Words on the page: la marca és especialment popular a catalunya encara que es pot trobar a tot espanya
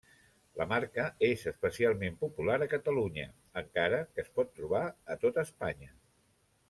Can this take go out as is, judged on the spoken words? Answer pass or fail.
pass